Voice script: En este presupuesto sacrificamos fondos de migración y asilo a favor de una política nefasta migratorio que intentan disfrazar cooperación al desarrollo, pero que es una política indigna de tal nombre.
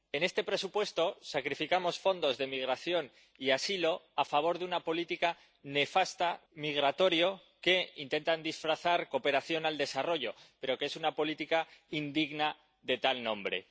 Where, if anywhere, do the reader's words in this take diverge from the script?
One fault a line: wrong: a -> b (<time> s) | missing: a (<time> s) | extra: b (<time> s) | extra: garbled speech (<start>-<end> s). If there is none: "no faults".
no faults